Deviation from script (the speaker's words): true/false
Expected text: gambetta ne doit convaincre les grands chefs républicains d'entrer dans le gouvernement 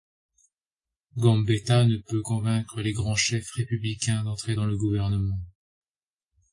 true